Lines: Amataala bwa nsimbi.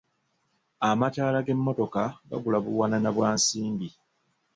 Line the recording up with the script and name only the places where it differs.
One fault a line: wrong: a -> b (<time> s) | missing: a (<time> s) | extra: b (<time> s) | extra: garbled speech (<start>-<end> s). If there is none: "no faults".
extra: g'emmotoka gagula buwanana (1.4 s)